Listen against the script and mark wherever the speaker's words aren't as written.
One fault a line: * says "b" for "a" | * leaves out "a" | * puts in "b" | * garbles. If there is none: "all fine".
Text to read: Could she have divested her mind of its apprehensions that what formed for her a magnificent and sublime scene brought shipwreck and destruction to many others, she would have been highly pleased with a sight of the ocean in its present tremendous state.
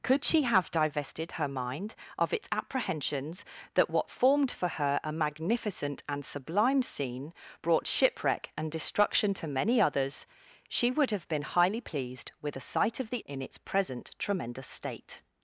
* leaves out "ocean"